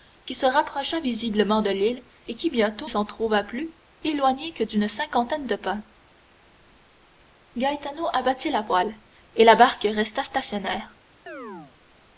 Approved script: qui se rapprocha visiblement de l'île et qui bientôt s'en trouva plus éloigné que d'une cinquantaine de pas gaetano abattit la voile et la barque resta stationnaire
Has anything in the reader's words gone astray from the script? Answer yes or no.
no